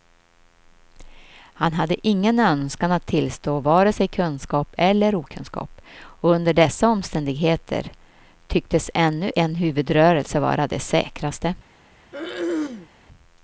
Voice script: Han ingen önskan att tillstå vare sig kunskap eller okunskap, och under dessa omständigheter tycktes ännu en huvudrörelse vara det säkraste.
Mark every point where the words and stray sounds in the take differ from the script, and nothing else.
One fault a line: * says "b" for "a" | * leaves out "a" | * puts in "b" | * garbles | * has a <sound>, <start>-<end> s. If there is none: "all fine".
* puts in "hade"
* has a throat clearing, 12.1-12.9 s